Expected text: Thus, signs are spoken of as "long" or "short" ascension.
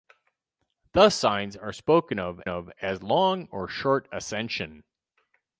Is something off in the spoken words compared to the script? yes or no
yes